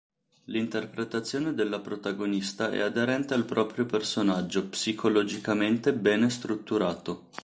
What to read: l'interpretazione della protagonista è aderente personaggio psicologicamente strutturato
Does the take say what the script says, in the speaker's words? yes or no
no